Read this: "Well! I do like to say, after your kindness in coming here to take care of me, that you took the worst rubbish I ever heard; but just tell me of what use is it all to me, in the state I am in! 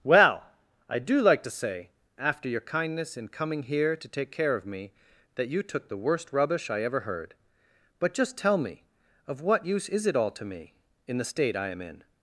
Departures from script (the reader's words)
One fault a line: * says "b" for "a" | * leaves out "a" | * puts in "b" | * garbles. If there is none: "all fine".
all fine